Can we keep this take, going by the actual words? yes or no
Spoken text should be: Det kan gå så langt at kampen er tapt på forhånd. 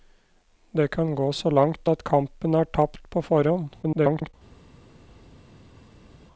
no